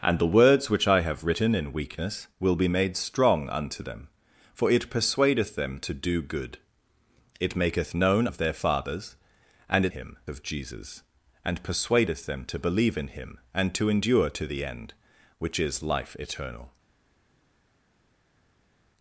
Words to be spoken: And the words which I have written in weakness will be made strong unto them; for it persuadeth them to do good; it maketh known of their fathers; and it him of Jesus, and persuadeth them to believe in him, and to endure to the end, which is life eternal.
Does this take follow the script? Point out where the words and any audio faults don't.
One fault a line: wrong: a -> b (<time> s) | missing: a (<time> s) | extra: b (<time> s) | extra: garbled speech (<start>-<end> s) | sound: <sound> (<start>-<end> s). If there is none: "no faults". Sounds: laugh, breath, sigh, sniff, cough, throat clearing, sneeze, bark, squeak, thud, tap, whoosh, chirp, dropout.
no faults